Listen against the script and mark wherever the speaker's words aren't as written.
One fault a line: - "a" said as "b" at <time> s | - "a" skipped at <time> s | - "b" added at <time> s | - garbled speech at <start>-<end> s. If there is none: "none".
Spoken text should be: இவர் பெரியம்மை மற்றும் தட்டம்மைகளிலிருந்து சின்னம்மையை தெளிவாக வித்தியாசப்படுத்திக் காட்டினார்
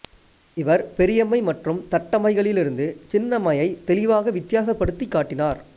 none